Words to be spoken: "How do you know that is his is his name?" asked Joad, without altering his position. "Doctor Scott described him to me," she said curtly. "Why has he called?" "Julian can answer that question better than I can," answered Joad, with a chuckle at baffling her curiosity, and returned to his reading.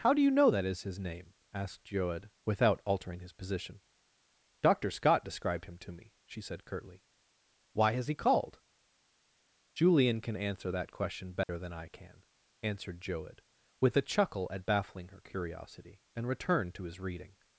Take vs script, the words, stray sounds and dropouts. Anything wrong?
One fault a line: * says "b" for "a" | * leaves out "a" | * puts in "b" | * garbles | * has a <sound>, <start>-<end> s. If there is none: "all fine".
* leaves out "is his"
* has a dropout, 11.4-11.5 s